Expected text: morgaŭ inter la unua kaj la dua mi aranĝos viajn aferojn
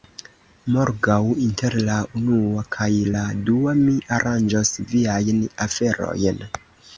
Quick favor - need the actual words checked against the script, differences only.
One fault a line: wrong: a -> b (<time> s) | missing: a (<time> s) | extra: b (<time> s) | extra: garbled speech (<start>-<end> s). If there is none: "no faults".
no faults